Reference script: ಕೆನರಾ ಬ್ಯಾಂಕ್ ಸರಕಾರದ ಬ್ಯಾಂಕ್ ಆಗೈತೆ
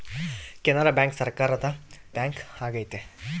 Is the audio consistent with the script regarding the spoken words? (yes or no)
yes